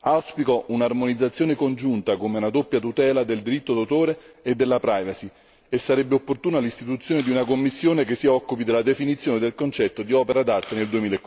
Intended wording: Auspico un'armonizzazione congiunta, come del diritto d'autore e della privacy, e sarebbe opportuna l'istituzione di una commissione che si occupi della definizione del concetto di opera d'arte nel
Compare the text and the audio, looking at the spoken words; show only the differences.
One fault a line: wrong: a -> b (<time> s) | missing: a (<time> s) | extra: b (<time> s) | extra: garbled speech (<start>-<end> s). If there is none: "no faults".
extra: una doppia tutela (2.4 s)